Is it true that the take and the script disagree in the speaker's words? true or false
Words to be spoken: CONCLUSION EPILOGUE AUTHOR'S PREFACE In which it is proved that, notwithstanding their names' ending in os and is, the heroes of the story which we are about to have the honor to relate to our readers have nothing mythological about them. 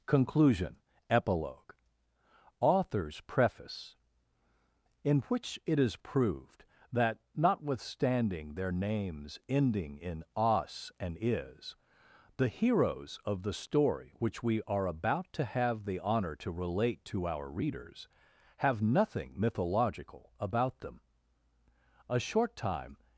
true